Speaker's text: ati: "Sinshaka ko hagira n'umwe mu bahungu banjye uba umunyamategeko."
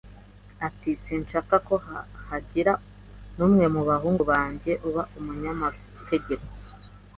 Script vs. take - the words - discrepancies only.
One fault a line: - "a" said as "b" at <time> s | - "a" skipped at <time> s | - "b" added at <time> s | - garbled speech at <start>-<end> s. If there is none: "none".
none